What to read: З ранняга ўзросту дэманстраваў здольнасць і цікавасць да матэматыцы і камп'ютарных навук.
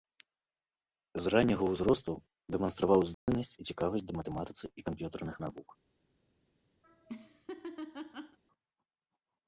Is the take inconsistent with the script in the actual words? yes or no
no